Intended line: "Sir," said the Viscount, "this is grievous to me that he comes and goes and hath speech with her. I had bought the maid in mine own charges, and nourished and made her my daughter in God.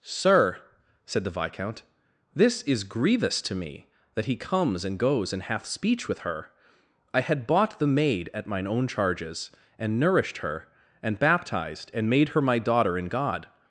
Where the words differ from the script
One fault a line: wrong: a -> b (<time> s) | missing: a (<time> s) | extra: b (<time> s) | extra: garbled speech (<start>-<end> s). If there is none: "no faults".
wrong: in -> at (8.3 s)
extra: her and baptized (10.4 s)